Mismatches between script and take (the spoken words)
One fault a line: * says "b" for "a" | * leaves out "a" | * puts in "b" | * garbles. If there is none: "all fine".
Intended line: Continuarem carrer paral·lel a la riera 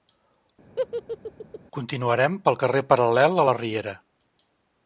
* puts in "pel"